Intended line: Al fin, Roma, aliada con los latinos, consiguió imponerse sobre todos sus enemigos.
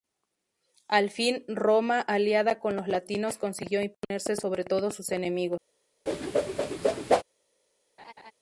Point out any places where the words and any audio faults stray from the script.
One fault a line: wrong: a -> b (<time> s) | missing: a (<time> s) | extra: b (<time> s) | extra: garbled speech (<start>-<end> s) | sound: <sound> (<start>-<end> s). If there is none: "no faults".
sound: whoosh (6.1-7.2 s)
sound: laugh (8.0-8.3 s)